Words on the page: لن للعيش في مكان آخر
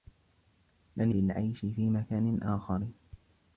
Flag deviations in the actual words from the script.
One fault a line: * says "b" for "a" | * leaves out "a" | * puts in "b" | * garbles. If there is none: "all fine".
all fine